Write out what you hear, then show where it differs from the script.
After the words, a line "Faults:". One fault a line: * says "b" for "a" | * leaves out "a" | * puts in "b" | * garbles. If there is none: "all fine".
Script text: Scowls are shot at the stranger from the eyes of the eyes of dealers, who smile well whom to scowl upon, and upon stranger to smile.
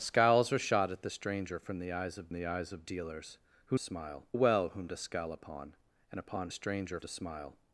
Scowls are shot at the stranger from the eyes of the eyes of dealers, who smile well whom to scowl upon, and upon stranger to smile.
Faults:
all fine